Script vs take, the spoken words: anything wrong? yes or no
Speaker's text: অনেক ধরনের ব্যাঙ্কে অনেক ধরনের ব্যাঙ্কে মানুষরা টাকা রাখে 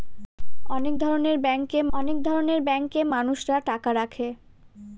no